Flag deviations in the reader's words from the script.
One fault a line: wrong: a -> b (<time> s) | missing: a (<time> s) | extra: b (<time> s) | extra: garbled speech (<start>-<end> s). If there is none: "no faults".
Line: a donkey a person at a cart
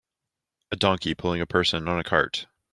extra: pulling (1.1 s)
wrong: at -> on (1.9 s)